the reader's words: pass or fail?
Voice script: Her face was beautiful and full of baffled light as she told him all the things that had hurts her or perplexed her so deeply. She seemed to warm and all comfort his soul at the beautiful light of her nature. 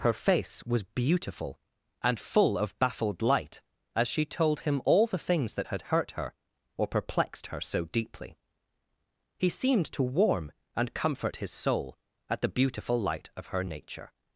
fail